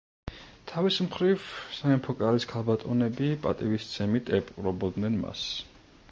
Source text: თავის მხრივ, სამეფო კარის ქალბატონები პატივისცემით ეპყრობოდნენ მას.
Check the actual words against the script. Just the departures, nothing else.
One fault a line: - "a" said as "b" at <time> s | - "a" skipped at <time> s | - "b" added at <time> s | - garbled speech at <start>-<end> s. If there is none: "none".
none